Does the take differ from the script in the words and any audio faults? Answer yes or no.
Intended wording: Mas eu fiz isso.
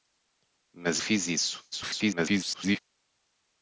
yes